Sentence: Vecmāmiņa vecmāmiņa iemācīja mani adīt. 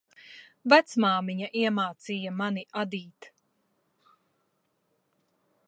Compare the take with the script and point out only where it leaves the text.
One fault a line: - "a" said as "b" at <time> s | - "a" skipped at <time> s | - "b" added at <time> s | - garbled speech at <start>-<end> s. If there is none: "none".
- "vecmāmiņa" skipped at 1.5 s